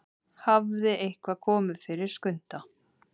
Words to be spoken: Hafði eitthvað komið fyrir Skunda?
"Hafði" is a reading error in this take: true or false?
false